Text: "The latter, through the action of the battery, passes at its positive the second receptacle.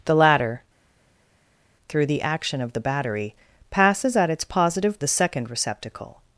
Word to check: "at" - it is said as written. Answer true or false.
true